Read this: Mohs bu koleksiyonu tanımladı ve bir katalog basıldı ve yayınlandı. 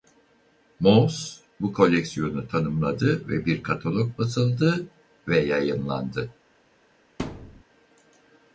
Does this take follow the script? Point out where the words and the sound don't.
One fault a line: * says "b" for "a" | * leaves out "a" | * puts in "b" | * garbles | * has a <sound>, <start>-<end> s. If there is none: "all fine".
* has a thud, 7.2-7.6 s